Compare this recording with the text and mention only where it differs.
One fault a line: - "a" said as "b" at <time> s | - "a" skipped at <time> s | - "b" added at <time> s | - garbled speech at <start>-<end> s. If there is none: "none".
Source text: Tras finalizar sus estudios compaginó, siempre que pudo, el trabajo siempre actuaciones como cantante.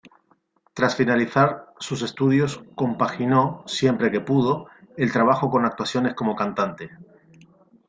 - "siempre" said as "con" at 5.5 s